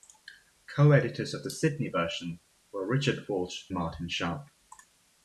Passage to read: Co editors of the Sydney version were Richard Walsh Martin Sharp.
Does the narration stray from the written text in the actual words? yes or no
no